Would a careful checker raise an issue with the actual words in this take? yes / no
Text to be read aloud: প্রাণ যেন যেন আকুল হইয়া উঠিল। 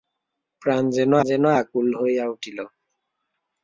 no